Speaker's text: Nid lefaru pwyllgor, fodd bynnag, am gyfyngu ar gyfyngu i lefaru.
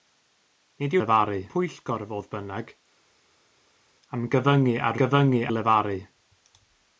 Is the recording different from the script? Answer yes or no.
no